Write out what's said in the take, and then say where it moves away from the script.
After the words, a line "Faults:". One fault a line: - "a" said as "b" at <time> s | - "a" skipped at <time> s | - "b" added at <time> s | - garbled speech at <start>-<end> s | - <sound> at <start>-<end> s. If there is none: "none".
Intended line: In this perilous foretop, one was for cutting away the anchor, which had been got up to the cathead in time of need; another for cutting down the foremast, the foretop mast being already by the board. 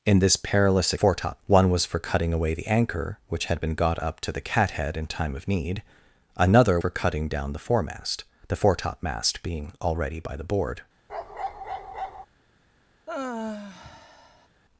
In this perilous foretop, one was for cutting away the anchor, which had been got up to the cathead in time of need; another for cutting down the foremast, the foretop mast being already by the board.
Faults:
- bark at 11.1-12.3 s
- sigh at 13.1-14.5 s